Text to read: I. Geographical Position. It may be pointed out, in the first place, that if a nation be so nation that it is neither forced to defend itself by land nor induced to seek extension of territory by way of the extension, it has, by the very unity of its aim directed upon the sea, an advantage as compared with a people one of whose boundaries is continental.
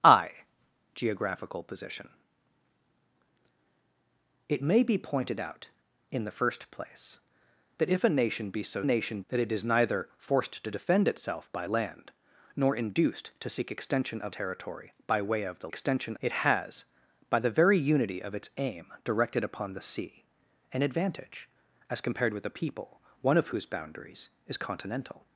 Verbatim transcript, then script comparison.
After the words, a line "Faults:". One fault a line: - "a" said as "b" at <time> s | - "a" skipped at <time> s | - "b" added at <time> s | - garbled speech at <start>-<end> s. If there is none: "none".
I. Geographical Position. It may be pointed out, in the first place, that if a nation be so nation that it is neither forced to defend itself by land nor induced to seek extension of territory by way of the extension, it has, by the very unity of its aim directed upon the sea, an advantage as compared with a people one of whose boundaries is continental.
Faults:
none